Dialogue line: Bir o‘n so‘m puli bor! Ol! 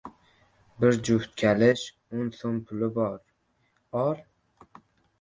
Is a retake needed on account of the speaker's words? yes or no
yes